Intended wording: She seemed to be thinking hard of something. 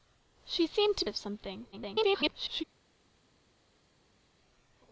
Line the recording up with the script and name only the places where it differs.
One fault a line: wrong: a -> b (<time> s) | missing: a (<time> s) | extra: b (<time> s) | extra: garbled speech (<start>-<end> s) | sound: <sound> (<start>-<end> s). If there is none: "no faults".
missing: be thinking hard (1.0 s)
extra: garbled speech (1.7-2.6 s)